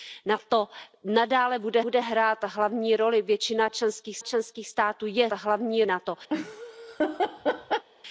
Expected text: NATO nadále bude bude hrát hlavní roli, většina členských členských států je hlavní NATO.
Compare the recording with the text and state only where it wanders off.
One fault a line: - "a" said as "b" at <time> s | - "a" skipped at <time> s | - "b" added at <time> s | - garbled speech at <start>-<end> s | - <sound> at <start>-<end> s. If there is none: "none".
- laugh at 6.3-7.9 s